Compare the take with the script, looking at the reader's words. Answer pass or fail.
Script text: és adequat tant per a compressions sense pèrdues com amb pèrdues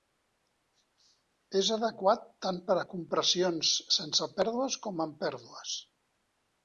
pass